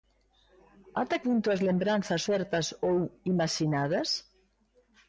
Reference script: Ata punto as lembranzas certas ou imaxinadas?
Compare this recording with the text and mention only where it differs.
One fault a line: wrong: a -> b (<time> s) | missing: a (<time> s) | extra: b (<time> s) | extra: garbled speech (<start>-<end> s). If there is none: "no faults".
no faults